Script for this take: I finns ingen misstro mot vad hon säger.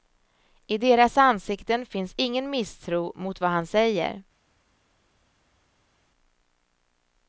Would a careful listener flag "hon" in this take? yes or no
yes